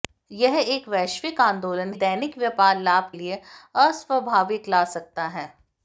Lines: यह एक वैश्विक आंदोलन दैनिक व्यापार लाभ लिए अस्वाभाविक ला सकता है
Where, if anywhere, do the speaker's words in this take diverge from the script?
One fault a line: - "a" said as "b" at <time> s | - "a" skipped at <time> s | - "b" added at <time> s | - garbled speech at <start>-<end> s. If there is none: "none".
none